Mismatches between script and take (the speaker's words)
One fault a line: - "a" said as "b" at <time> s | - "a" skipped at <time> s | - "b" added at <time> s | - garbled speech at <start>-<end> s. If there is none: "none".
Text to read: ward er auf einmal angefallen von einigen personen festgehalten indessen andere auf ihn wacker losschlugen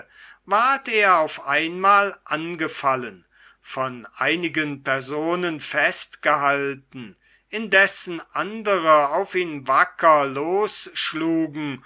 none